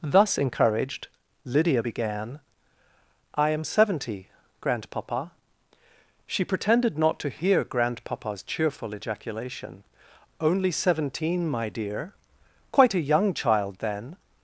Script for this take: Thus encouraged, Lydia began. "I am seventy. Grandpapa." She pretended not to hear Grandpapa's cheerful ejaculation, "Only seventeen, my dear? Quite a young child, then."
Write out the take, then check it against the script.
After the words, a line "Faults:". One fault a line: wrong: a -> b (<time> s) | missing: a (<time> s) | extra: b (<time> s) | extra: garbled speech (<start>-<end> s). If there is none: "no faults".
Thus encouraged, Lydia began. "I am seventy. Grandpapa." She pretended not to hear Grandpapa's cheerful ejaculation, "Only seventeen, my dear? Quite a young child, then."
Faults:
no faults